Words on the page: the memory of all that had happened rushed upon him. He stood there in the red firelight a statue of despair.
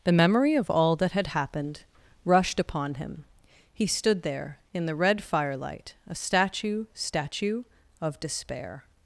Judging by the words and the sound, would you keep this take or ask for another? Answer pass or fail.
fail